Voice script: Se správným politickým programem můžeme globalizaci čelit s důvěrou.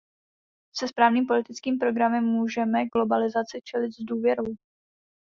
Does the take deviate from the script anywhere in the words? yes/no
no